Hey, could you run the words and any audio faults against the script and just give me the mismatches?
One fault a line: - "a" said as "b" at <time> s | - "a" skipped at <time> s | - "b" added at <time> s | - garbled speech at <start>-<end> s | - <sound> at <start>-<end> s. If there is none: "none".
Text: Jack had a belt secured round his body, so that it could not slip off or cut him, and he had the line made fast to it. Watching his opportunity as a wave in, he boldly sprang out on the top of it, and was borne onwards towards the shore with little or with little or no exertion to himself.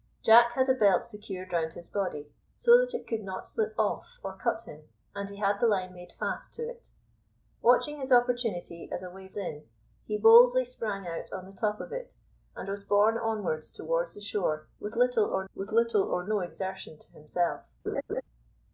- laugh at 17.9-18.2 s